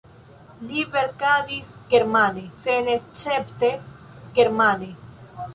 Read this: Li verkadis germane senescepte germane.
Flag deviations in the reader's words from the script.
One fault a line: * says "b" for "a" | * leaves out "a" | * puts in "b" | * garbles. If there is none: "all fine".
all fine